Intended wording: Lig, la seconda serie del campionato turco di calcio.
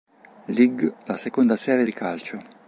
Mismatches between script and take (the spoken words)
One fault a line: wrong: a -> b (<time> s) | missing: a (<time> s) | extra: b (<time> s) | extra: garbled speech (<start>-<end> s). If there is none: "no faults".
missing: del campionato turco (1.9 s)